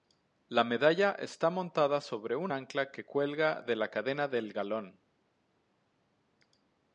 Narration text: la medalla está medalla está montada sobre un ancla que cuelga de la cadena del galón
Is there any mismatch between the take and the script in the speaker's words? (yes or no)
yes